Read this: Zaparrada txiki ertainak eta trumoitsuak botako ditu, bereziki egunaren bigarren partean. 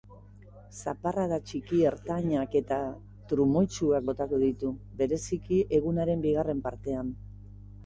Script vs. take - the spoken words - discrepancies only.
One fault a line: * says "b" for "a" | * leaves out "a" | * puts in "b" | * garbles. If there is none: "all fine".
all fine